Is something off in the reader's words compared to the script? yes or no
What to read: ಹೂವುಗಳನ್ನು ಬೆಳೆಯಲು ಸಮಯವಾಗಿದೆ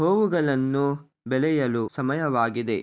no